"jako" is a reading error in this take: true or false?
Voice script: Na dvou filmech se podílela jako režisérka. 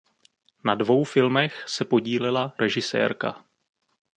true